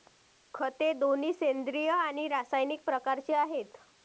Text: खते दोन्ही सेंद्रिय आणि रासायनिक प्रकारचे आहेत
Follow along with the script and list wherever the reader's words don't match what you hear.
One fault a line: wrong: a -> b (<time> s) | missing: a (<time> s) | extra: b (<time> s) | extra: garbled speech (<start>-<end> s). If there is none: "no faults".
no faults